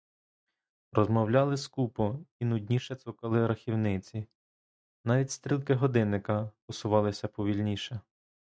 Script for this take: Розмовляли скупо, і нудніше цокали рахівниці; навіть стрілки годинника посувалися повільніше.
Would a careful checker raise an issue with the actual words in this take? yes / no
no